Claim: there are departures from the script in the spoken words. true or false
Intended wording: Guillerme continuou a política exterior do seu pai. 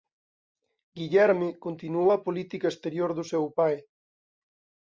false